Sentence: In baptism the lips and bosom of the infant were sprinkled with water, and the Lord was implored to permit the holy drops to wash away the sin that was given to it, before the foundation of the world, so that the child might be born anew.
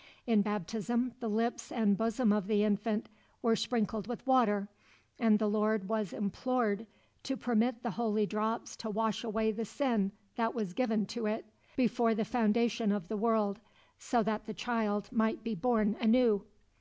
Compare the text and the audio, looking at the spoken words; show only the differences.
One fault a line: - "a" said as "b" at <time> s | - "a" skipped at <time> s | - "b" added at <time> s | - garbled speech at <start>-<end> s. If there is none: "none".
none